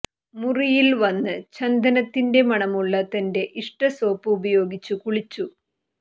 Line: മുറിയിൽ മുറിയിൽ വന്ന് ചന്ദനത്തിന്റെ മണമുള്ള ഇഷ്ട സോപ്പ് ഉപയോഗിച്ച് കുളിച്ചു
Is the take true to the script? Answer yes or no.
no